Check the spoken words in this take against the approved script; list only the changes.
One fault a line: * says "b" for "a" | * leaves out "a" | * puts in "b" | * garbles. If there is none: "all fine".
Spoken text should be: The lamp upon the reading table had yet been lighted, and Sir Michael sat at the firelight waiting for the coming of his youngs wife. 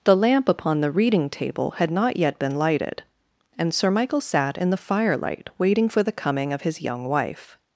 * puts in "not"
* says "in" for "at"
* says "young" for "youngs"